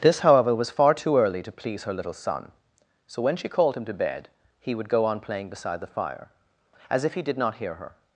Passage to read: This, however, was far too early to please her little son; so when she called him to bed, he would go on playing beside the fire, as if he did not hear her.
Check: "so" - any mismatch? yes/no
no